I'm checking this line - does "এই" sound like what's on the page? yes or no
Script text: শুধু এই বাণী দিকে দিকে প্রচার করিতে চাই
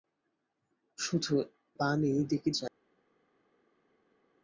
no